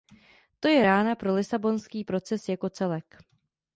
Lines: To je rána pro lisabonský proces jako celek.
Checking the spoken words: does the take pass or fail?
pass